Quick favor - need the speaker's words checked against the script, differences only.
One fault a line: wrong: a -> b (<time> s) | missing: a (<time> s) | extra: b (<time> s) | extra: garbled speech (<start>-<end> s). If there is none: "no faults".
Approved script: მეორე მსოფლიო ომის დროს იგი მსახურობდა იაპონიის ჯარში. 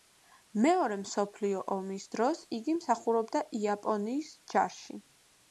no faults